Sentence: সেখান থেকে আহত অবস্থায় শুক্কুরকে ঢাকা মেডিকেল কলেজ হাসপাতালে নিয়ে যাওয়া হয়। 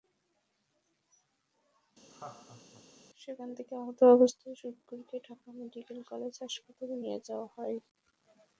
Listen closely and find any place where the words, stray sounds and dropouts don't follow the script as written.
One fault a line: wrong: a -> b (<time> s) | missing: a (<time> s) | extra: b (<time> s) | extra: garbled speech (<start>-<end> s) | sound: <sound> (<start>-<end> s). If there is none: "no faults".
sound: laugh (2.1-2.8 s)